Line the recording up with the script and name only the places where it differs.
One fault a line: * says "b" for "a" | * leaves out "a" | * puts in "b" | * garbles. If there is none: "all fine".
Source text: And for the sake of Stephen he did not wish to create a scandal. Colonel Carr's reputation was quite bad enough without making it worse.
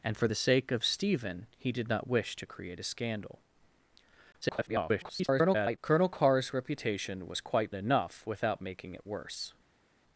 * garbles
* leaves out "bad"